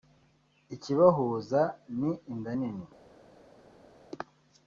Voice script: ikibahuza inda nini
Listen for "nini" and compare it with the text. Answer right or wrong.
right